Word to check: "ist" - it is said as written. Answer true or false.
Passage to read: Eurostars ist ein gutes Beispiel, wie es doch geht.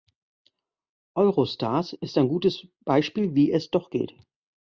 true